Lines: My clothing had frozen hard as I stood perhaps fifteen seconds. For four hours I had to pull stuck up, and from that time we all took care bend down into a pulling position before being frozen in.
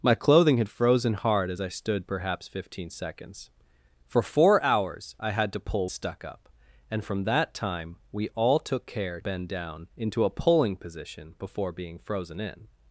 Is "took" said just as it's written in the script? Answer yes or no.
yes